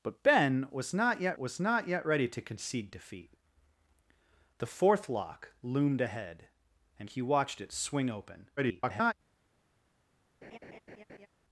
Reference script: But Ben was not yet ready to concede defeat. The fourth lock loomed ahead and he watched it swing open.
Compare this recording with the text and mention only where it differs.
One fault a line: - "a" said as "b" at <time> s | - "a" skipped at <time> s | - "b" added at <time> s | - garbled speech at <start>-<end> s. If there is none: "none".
- "was not yet" added at 1.4 s
- garbled speech at 8.6-9.1 s